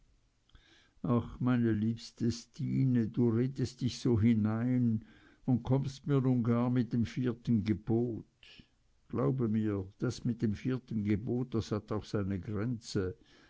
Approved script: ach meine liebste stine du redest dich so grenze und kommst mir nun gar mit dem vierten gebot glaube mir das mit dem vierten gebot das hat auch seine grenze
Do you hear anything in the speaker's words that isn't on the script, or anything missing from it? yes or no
yes